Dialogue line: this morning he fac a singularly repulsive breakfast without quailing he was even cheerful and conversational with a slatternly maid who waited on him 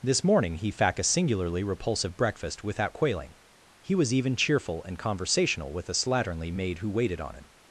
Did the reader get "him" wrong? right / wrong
right